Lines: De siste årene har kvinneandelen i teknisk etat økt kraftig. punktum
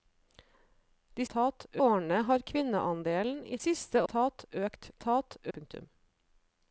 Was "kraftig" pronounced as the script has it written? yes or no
no